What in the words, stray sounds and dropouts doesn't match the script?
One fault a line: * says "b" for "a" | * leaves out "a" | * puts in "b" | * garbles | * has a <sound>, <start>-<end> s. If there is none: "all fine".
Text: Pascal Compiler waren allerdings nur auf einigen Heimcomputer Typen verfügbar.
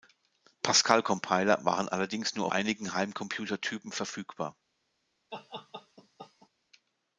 * leaves out "auf"
* has a laugh, 5.3-6.5 s